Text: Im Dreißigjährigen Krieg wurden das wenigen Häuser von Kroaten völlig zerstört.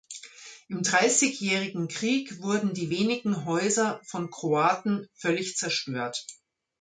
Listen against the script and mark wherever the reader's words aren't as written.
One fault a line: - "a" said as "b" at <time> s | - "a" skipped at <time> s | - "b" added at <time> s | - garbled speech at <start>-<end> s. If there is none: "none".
- "das" said as "die" at 2.7 s